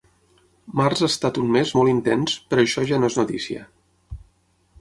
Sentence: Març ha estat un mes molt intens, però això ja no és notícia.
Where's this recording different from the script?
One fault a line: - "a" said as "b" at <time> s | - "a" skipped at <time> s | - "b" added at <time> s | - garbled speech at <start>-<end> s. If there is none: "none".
none